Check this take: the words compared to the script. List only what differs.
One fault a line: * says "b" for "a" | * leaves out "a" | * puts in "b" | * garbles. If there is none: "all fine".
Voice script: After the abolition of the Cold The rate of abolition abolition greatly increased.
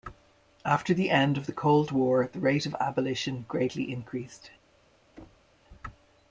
* says "end" for "abolition"
* puts in "War"
* leaves out "abolition"